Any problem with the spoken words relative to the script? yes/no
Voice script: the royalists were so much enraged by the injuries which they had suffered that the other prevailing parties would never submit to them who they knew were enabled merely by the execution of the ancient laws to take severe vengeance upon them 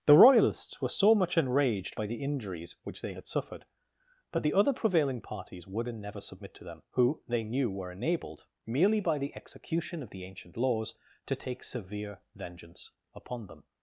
yes